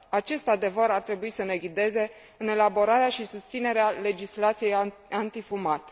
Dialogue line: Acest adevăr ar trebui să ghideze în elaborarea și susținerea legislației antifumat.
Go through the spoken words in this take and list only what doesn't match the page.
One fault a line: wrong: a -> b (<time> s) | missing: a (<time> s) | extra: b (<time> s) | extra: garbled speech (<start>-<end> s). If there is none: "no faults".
extra: ne (1.4 s)